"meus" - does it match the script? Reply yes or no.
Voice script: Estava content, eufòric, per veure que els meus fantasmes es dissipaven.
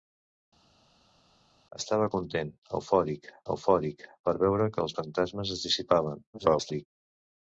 no